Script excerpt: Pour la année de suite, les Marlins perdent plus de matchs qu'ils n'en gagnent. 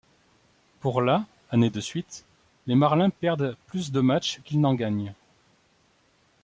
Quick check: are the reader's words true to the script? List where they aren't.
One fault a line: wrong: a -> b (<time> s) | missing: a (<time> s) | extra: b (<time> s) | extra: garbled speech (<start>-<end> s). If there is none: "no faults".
no faults